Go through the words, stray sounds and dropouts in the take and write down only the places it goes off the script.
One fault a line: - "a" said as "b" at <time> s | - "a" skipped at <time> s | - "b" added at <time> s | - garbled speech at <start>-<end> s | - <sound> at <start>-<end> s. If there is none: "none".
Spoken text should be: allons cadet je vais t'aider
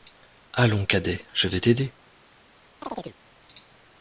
- chirp at 2.8-3.2 s